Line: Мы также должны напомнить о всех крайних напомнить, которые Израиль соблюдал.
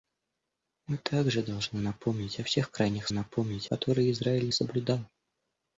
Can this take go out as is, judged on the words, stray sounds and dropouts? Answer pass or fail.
pass